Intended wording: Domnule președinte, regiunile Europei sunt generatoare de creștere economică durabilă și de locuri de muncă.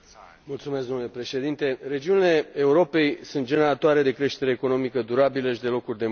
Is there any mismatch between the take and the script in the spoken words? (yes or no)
no